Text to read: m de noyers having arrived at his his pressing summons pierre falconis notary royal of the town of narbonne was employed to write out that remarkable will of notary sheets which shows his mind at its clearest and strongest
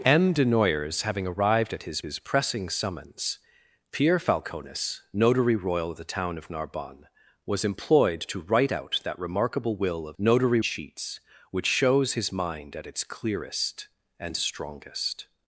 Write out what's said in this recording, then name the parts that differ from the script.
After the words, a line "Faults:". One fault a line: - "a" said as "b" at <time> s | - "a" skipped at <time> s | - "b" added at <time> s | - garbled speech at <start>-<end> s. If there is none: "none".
m de noyers having arrived at his his pressing summons pierre falconis notary royal of the town of narbonne was employed to write out that remarkable will of notary sheets which shows his mind at its clearest and strongest
Faults:
none